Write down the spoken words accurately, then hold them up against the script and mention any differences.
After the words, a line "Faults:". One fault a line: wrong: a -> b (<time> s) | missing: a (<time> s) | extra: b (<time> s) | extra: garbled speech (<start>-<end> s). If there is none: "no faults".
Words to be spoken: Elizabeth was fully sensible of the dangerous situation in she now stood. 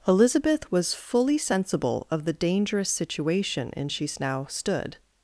Elizabeth was fully sensible of the dangerous situation in she now stood.
Faults:
no faults